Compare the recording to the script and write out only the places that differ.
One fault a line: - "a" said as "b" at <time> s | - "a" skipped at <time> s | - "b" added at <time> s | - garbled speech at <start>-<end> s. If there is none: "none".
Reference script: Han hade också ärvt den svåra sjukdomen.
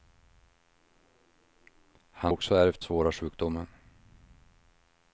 - "hade" skipped at 2.3 s
- "den" skipped at 2.8 s